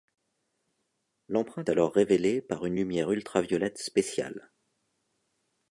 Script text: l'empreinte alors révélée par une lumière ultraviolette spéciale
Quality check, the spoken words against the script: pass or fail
pass